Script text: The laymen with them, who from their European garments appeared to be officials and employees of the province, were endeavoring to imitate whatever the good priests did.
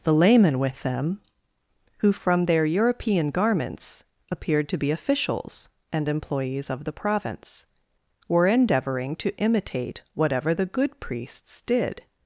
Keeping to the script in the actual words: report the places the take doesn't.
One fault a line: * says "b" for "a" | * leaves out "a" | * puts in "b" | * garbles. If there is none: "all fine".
all fine